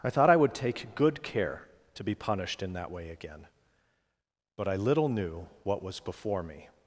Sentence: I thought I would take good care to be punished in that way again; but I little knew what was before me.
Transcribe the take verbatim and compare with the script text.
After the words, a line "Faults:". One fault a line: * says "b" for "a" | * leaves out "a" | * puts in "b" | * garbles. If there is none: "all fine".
I thought I would take good care to be punished in that way again; but I little knew what was before me.
Faults:
all fine